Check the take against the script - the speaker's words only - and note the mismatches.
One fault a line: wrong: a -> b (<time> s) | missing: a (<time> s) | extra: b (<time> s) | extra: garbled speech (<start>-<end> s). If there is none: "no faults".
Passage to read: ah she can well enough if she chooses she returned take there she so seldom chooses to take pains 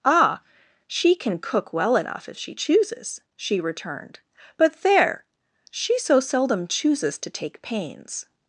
extra: cook (1.4 s)
wrong: take -> but (4.6 s)